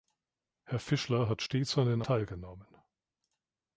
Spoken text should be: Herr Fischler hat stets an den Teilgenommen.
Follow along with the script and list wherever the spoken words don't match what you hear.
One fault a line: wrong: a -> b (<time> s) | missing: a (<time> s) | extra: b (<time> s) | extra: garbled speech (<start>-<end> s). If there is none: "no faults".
no faults